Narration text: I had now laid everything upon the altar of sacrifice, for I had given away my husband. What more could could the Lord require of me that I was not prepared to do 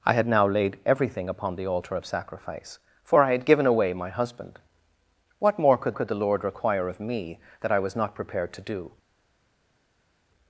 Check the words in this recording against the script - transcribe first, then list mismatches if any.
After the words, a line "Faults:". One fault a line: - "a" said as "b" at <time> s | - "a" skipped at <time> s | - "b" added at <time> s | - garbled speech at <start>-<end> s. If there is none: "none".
I had now laid everything upon the altar of sacrifice, for I had given away my husband. What more could could the Lord require of me that I was not prepared to do
Faults:
none